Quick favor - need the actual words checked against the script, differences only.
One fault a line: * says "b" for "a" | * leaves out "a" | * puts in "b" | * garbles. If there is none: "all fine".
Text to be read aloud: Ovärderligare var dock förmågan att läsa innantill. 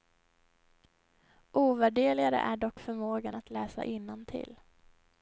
* says "är" for "var"